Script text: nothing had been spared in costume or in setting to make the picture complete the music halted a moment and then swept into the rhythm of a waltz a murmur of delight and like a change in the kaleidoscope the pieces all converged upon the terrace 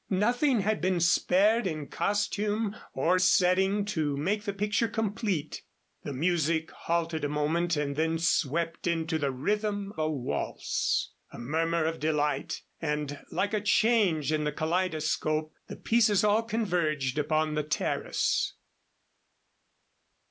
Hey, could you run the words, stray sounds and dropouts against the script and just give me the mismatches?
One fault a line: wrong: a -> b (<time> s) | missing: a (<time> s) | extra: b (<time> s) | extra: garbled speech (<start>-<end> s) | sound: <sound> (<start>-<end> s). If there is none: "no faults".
missing: in (3.2 s)
missing: of (9.9 s)